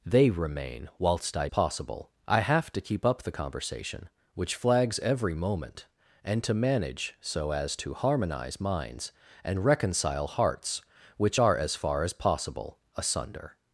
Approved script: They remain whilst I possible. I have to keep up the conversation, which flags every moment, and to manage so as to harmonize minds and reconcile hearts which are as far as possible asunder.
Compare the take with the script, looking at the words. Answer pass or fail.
pass